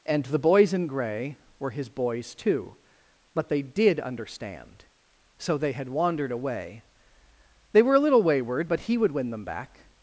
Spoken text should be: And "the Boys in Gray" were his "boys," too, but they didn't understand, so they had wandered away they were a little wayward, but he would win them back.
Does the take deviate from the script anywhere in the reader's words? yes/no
yes